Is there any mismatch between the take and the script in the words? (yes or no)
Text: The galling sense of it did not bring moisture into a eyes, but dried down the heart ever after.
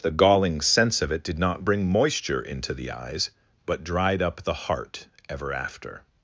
yes